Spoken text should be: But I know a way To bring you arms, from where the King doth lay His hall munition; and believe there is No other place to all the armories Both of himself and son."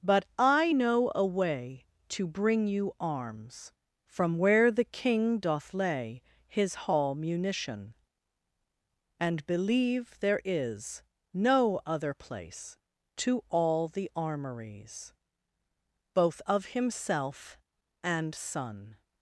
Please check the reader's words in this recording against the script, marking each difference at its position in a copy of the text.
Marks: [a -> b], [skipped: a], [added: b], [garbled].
But I know a way To bring you arms, from where the King doth lay His hall munition; and believe there is No other place to all the armories Both of himself and son."